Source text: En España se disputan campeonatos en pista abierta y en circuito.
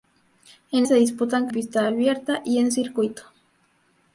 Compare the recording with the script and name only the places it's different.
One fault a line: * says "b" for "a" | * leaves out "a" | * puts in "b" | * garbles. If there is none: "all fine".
* leaves out "España"
* leaves out "campeonatos en"